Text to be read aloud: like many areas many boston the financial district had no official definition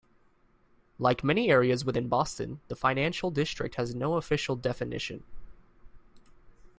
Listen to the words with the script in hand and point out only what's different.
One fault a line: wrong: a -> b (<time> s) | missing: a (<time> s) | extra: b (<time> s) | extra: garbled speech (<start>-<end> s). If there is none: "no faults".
wrong: many -> within (1.9 s)
wrong: had -> has (3.8 s)